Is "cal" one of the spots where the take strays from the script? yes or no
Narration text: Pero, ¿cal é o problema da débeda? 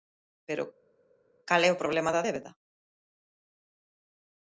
no